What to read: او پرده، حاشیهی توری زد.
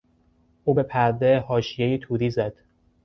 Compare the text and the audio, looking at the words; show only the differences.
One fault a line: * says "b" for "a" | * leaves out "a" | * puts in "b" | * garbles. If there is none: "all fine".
* puts in "به"